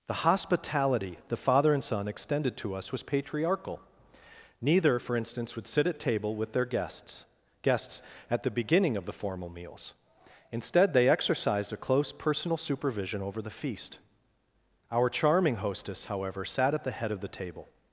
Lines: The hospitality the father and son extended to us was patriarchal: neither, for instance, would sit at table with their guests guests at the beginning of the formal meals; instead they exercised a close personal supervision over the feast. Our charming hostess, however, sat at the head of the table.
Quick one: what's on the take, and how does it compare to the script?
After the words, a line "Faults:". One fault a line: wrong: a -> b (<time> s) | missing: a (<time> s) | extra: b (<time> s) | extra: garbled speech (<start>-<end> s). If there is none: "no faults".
The hospitality the father and son extended to us was patriarchal: neither, for instance, would sit at table with their guests guests at the beginning of the formal meals; instead they exercised a close personal supervision over the feast. Our charming hostess, however, sat at the head of the table.
Faults:
no faults